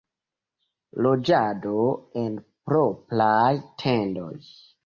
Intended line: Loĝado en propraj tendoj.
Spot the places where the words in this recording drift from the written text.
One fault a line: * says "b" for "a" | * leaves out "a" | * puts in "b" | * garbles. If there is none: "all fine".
all fine